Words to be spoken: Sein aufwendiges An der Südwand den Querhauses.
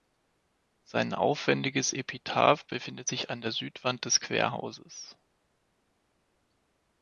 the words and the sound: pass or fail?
fail